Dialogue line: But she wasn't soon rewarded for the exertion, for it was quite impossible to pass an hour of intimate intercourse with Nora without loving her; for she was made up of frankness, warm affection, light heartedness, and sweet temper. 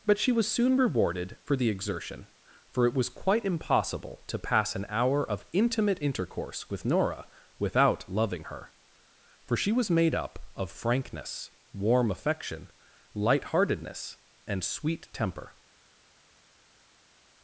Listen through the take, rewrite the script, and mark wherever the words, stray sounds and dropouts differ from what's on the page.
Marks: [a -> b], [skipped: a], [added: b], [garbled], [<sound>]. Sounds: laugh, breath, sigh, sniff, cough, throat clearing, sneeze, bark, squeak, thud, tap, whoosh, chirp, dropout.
But she [wasn't -> was] soon rewarded for the exertion, for it was quite impossible to pass an hour of intimate intercourse with Nora without loving her; for she was made up of frankness, warm affection, light heartedness, and sweet temper.